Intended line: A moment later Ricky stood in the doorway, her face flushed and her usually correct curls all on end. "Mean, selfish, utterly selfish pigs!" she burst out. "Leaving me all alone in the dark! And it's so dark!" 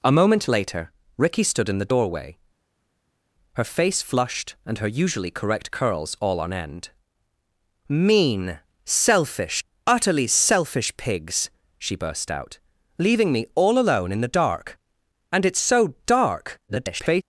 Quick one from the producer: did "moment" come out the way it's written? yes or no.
yes